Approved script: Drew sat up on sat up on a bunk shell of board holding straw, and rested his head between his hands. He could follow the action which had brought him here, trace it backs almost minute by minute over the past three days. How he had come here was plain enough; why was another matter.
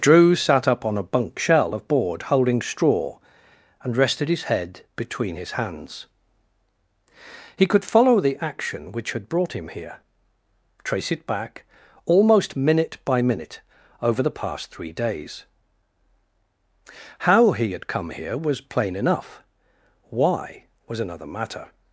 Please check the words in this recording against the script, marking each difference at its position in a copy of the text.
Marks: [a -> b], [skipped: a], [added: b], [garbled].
Drew sat up on [skipped: sat up on] a bunk shell of board holding straw, and rested his head between his hands. He could follow the action which had brought him here, trace it [backs -> back] almost minute by minute over the past three days. How he had come here was plain enough; why was another matter.